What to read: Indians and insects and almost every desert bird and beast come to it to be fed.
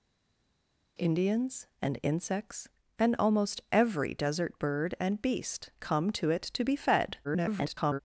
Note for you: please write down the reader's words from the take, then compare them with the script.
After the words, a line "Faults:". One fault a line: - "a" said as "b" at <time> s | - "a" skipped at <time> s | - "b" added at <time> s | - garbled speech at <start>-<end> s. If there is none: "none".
Indians and insects and almost every desert bird and beast come to it to be fed. [garbled]
Faults:
- garbled speech at 7.2-8.0 s